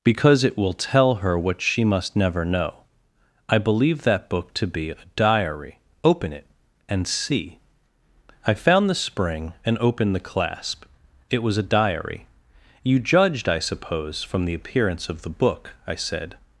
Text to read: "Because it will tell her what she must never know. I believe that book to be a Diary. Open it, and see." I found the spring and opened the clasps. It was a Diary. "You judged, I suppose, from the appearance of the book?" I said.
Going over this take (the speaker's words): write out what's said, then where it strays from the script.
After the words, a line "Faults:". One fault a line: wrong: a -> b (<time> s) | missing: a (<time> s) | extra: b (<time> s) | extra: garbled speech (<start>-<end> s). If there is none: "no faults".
"Because it will tell her what she must never know. I believe that book to be a Diary. Open it, and see." I found the spring and opened the clasp. It was a Diary. "You judged, I suppose, from the appearance of the book?" I said.
Faults:
wrong: clasps -> clasp (10.2 s)